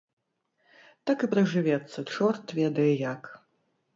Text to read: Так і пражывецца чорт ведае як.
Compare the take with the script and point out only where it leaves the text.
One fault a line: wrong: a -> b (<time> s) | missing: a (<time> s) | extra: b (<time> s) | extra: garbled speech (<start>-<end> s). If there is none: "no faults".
no faults